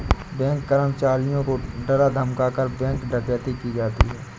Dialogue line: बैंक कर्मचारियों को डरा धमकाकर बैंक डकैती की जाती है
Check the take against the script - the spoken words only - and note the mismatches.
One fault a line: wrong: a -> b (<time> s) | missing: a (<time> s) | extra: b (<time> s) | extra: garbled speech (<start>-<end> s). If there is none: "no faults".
no faults